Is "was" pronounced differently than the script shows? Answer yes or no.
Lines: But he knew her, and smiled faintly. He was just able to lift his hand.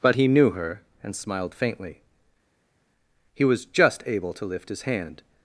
no